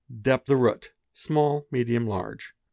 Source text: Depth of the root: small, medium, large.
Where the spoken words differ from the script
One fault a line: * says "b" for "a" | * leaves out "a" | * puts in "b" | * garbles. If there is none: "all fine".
* leaves out "of"